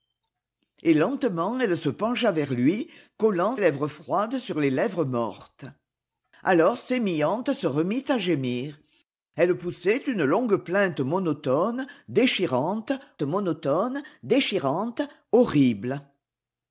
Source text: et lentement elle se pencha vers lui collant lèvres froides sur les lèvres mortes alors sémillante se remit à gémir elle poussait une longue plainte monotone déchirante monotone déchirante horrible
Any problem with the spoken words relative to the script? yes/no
no